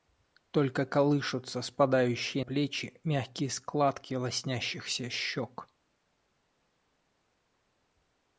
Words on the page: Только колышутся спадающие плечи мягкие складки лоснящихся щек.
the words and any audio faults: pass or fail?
pass